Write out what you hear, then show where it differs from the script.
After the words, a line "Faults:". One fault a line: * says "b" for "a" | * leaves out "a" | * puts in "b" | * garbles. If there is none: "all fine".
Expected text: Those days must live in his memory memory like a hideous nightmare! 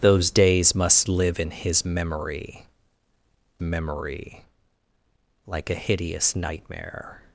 Those days must live in his memory memory like a hideous nightmare!
Faults:
all fine